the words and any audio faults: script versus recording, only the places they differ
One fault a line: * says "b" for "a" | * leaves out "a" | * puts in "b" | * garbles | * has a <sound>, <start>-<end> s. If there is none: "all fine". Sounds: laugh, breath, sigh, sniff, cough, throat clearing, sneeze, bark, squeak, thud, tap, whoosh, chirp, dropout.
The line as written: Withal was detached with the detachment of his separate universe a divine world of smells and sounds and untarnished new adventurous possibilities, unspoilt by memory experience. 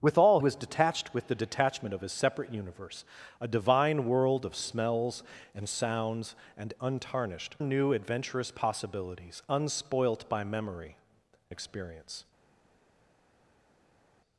all fine